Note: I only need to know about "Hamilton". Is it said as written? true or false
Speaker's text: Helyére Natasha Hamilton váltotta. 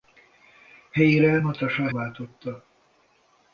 false